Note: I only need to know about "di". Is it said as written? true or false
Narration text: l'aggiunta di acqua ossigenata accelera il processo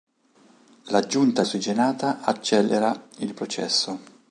false